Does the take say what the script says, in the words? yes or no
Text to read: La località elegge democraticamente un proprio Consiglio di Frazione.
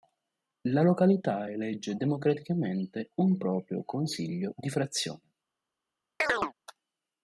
yes